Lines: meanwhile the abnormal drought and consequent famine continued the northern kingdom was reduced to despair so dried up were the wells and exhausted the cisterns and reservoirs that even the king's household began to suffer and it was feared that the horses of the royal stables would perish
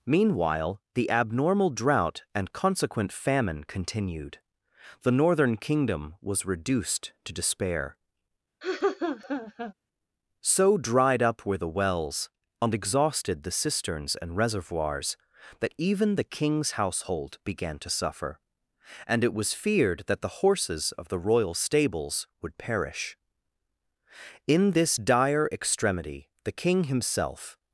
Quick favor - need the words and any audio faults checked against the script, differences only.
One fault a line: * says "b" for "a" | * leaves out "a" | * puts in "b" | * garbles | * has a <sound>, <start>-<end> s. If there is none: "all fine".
* has a laugh, 8.6-9.7 s
* puts in "in this dire extremity the king himself"